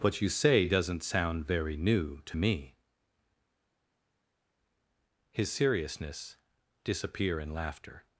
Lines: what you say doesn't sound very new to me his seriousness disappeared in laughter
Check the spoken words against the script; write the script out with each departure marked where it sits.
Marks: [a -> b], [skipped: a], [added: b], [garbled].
what you say doesn't sound very new to me his seriousness [disappeared -> disappear] in laughter